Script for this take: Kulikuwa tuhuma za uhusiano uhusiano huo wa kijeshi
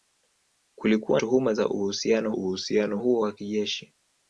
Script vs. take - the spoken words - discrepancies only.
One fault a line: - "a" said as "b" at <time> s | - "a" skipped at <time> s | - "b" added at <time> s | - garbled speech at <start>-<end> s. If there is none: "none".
none